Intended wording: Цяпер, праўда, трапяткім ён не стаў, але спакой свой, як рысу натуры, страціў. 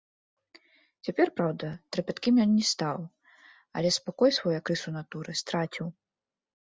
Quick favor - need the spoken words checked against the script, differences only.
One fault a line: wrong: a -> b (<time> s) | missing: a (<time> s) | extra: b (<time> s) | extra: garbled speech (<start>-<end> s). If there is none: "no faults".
no faults